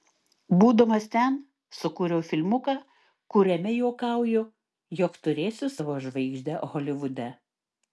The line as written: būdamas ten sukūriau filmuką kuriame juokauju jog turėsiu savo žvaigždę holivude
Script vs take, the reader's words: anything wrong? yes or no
no